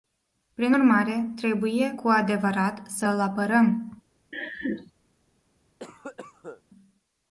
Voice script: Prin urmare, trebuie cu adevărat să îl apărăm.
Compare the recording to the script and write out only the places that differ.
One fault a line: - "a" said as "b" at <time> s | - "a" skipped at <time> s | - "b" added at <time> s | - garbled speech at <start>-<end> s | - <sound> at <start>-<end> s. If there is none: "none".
- laugh at 4.3-4.9 s
- cough at 5.8-6.6 s